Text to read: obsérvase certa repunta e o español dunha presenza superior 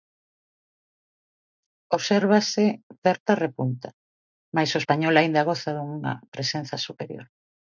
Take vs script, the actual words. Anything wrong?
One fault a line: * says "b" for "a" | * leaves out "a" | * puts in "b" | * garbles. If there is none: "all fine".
* says "mais" for "e"
* puts in "aínda goza"